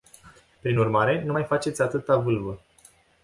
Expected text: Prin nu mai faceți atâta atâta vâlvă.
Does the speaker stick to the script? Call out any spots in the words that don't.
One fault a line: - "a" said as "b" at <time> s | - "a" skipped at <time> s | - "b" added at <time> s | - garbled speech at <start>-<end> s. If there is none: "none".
- "urmare" added at 0.8 s
- "atâta" skipped at 2.2 s